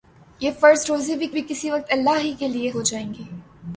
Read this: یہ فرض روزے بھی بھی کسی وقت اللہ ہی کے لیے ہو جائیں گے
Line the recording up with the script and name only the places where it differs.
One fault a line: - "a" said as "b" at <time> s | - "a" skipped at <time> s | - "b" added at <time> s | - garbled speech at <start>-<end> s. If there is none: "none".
none